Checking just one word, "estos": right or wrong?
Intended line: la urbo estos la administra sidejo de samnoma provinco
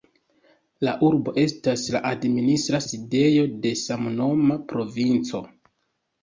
wrong